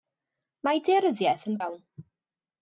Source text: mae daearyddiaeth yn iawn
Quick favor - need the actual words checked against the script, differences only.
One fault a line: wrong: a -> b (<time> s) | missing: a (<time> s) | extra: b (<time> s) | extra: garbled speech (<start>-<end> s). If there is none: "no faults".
no faults